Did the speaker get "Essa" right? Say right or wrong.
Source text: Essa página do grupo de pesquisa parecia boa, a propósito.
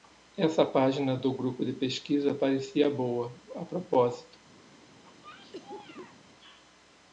right